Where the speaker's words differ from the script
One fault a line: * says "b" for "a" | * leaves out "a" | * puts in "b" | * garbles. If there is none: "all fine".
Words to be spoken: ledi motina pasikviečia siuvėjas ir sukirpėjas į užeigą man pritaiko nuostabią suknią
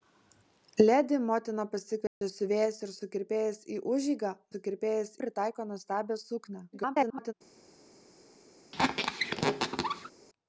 * says "sukirpėjas" for "man"
* garbles